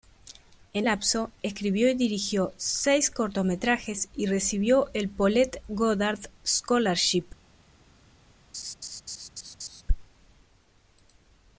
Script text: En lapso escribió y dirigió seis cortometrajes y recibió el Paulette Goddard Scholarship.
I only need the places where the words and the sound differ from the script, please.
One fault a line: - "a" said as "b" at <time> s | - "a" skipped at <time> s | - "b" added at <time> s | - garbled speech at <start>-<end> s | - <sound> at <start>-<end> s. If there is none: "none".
- laugh at 8.5-9.8 s